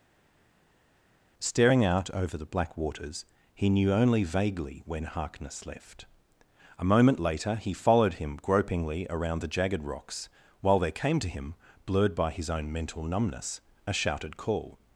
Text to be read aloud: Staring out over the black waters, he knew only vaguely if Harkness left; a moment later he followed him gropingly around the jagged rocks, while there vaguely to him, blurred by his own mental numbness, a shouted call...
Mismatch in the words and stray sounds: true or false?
true